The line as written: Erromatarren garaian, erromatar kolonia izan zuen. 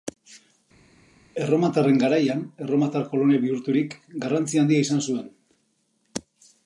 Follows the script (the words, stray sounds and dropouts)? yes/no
no